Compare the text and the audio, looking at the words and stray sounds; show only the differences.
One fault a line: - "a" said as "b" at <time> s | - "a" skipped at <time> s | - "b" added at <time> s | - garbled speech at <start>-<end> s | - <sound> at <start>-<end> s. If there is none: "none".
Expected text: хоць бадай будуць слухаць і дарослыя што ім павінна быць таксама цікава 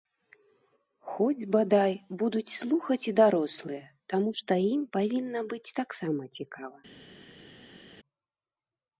- "таму" added at 4.2 s